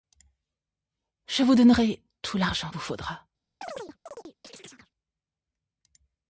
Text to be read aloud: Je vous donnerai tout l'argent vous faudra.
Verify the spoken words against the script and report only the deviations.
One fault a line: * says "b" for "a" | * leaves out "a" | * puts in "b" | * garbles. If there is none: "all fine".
all fine